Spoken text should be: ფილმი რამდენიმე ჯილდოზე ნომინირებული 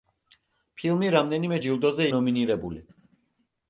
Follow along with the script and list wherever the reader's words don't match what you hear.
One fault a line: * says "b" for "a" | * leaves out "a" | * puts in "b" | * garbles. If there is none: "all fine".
all fine